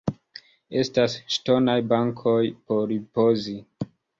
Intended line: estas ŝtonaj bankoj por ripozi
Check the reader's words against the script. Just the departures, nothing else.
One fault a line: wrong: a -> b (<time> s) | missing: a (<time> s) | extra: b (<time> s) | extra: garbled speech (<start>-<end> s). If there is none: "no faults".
no faults